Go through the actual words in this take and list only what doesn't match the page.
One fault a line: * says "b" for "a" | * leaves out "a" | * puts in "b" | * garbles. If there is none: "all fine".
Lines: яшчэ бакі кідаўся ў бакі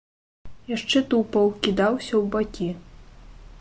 * says "тупаў" for "бакі"